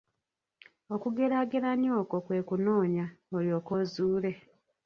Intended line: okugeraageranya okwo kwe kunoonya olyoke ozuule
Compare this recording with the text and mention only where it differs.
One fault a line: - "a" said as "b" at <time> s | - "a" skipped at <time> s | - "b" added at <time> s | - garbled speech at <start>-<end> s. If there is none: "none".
none